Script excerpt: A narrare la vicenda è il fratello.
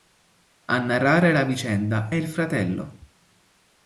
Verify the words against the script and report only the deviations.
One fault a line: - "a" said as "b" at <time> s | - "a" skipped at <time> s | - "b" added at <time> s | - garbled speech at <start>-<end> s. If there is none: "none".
none